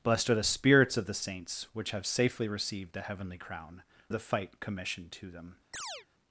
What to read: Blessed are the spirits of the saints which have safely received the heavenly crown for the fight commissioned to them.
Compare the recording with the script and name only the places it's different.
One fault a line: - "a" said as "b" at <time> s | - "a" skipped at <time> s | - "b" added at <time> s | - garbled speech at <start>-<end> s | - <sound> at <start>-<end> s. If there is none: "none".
- "for" skipped at 3.8 s
- chirp at 5.7-6.1 s